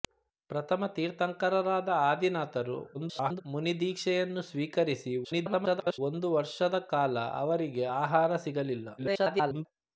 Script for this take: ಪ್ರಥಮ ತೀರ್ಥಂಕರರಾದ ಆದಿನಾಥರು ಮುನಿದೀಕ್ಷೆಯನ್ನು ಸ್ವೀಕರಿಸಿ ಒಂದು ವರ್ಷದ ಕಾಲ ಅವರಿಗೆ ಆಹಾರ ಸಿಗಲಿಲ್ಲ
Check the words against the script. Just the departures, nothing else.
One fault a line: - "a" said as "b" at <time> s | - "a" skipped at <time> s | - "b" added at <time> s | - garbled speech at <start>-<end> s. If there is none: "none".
- garbled speech at 2.9-3.4 s
- garbled speech at 5.2-6.0 s
- garbled speech at 9.0-9.7 s